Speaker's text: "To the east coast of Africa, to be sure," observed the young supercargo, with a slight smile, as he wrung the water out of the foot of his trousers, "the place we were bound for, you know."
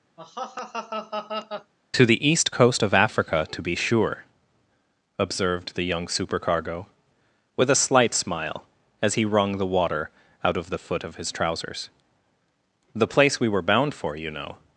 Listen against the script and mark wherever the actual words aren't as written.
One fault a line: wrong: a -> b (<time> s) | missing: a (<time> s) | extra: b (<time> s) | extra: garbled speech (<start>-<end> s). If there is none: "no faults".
no faults